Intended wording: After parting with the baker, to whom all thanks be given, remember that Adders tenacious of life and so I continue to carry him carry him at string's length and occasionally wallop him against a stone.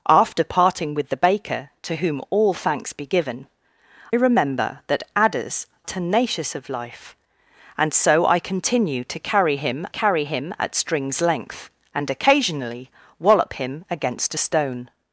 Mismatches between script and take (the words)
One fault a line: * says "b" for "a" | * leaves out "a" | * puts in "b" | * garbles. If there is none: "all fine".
all fine